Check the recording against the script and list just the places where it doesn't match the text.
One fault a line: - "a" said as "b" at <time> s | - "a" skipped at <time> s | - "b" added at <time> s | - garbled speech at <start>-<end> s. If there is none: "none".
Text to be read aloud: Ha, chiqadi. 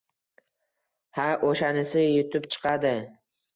- "o‘shanisi yutib" added at 1.5 s